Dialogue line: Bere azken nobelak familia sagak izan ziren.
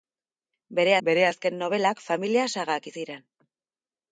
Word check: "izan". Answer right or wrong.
wrong